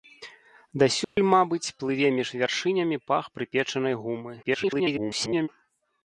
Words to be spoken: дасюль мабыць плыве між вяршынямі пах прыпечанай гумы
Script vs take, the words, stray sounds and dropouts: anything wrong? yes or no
yes